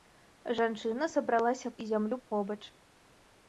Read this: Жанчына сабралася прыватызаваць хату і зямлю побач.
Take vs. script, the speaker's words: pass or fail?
fail